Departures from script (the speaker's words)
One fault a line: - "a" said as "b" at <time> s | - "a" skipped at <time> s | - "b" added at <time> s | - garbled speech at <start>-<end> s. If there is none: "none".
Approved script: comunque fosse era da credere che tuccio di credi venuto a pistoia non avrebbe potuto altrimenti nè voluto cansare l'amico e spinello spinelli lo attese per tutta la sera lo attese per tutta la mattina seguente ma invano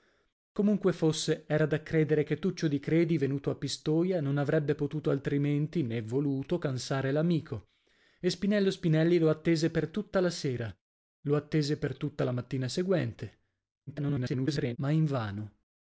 - garbled speech at 13.9-14.8 s